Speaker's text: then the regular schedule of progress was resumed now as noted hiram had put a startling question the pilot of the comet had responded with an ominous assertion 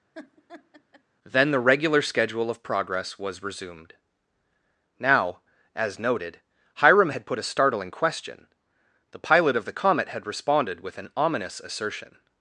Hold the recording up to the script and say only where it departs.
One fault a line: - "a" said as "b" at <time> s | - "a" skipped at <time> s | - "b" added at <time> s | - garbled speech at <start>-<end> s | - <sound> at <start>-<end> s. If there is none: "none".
- laugh at 0.1-1.0 s